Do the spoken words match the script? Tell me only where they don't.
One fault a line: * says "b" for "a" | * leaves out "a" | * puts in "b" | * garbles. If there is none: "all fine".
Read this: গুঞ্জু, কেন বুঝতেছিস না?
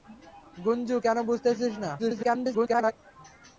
* garbles